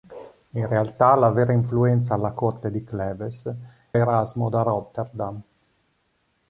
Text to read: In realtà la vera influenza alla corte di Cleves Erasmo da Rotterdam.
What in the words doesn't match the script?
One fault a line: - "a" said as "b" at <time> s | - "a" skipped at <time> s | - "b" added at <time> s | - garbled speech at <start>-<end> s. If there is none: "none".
none